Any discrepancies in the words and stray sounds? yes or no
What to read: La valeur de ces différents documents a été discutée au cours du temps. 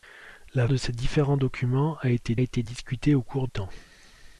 yes